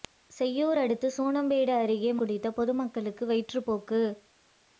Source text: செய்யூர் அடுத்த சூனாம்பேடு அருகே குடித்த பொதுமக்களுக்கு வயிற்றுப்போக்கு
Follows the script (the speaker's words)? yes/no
yes